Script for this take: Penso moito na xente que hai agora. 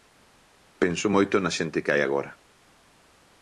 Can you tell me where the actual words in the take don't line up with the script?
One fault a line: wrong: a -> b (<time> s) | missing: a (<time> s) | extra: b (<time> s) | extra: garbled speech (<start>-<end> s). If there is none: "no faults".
no faults